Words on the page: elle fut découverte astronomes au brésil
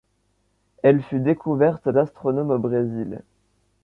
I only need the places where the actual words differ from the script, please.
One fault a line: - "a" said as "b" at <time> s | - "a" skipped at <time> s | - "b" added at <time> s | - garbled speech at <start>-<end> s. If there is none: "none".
none